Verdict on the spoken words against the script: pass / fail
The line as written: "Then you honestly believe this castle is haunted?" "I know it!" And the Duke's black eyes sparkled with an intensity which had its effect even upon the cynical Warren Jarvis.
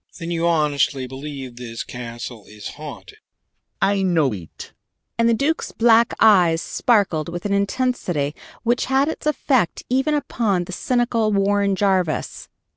pass